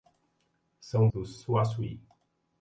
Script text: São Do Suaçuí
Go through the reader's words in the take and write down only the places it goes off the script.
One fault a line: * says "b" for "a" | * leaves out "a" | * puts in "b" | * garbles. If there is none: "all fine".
all fine